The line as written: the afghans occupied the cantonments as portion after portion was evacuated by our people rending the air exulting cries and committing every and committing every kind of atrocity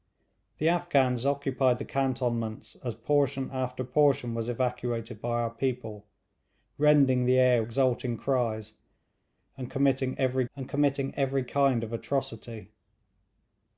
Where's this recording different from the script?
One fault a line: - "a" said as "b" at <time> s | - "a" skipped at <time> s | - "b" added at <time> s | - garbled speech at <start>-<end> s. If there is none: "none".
none